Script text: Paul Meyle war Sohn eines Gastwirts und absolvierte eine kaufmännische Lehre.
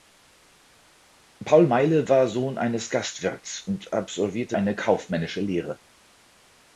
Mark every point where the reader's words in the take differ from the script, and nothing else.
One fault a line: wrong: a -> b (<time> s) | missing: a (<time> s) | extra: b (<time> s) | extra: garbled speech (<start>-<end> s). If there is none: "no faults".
no faults